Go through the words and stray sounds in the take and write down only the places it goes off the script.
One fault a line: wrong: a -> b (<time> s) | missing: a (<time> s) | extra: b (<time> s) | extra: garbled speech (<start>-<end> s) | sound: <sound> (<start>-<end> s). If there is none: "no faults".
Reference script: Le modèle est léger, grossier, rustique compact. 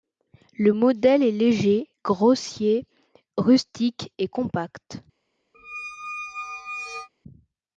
extra: et (4.2 s)
sound: squeak (5.5-7.1 s)